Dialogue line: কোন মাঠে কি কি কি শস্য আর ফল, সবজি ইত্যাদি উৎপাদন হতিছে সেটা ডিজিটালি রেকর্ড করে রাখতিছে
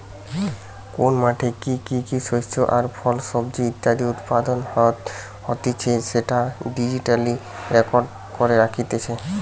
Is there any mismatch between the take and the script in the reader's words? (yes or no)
no